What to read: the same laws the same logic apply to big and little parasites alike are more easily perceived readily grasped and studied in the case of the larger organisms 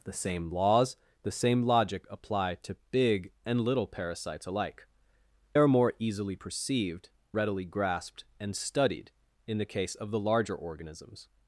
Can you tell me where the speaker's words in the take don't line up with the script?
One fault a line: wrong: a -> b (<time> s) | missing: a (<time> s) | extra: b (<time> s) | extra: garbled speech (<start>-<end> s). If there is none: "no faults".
no faults